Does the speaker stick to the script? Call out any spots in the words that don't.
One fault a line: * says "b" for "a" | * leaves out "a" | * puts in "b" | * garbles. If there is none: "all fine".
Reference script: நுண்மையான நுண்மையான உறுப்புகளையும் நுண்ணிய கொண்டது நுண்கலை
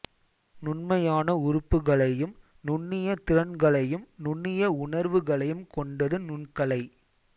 * leaves out "நுண்மையான"
* puts in "திறன்களையும் நுண்ணிய உணர்வுகளையும்"